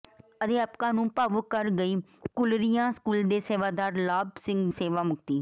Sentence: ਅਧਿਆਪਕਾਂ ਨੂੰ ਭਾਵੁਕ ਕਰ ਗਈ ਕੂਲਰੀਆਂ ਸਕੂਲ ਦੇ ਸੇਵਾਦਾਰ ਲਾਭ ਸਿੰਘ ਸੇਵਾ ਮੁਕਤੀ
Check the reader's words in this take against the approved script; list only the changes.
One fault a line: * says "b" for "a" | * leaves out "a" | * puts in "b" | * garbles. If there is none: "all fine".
all fine